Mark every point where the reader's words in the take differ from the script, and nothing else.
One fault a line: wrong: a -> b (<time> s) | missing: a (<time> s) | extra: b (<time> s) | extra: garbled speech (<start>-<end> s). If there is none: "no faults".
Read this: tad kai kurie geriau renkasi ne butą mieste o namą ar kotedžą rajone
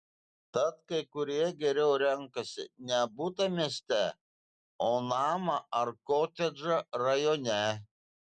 no faults